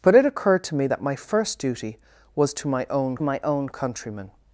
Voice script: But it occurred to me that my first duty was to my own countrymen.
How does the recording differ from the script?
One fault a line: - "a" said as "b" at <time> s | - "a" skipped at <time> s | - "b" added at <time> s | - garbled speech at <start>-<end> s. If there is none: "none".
- "my own" added at 3.2 s